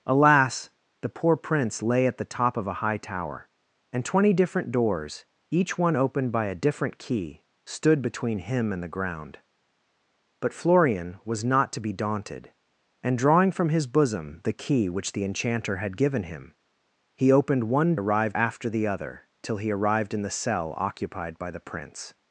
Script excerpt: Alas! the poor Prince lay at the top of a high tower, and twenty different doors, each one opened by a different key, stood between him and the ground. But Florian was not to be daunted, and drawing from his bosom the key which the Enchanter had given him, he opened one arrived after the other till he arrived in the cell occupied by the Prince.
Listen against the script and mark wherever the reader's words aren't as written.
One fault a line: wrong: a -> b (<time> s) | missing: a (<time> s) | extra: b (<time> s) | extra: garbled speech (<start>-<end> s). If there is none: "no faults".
no faults